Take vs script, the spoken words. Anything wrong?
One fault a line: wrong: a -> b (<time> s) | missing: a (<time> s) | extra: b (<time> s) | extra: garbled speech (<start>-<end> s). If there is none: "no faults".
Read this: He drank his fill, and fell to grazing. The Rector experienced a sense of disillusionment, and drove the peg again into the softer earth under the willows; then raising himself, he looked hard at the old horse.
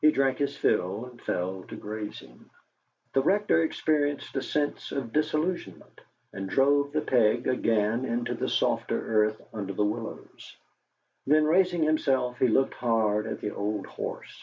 no faults